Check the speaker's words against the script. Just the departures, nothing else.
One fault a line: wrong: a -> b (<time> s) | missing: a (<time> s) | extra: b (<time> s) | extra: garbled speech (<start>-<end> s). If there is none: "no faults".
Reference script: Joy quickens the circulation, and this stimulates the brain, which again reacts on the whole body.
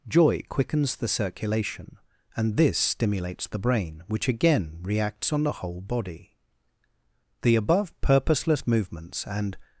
extra: The above purposeless movements and (7.4 s)